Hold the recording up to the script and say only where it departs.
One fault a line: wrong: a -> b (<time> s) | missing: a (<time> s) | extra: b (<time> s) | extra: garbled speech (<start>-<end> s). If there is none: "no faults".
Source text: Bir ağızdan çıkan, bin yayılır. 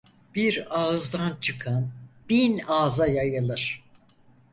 extra: ağza (2.7 s)